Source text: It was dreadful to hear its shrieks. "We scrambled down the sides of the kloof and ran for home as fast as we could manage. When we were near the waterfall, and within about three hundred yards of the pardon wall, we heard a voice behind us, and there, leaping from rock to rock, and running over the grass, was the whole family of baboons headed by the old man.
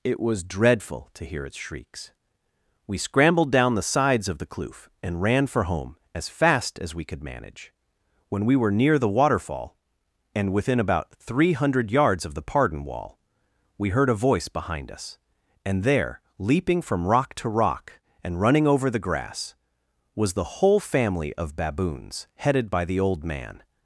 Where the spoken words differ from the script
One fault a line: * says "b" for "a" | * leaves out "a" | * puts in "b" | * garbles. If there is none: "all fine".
all fine